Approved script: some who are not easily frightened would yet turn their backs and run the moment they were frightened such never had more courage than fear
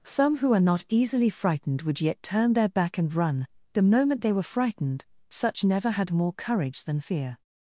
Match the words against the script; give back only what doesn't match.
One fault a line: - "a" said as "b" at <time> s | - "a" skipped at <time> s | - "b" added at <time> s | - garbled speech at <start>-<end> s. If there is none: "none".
- "backs" said as "back" at 2.7 s